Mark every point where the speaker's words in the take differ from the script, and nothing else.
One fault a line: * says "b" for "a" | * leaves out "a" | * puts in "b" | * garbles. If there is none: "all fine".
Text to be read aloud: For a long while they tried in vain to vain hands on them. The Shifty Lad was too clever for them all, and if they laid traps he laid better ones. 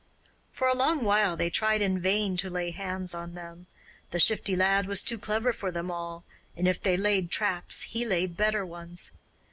* says "lay" for "vain"